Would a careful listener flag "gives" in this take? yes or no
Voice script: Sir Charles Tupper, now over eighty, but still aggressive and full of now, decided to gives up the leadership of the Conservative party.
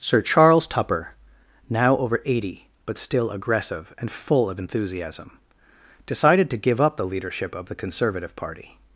yes